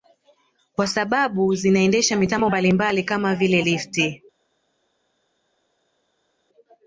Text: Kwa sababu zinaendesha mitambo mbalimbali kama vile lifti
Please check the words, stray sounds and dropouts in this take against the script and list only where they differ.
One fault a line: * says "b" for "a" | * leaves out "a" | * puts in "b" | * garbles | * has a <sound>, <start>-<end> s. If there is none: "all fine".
all fine